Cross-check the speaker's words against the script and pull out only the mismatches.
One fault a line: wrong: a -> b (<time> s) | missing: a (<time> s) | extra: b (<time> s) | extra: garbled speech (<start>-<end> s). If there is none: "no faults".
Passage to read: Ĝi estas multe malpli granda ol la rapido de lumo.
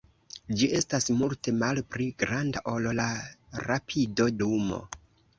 missing: de (4.3 s)